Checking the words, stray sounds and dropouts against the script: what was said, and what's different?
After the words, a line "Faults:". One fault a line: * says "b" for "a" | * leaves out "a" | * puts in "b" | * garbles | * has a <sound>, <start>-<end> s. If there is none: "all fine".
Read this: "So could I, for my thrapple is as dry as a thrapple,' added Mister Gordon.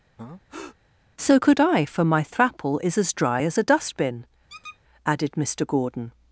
"So could I, for my thrapple is as dry as a dustbin,' added Mister Gordon.
Faults:
* has a breath, 0.2-0.8 s
* says "dustbin" for "thrapple"
* has a squeak, 4.5-4.8 s